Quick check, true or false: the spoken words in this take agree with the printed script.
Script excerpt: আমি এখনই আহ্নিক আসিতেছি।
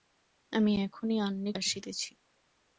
true